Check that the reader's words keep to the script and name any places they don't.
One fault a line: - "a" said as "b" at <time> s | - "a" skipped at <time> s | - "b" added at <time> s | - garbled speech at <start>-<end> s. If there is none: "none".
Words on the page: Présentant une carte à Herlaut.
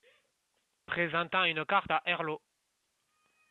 none